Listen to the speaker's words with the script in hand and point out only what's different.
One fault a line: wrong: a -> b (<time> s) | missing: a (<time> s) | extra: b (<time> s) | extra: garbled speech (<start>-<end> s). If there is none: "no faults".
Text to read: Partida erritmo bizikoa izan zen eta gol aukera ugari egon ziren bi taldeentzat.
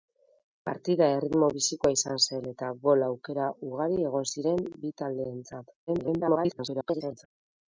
extra: garbled speech (5.9-7.3 s)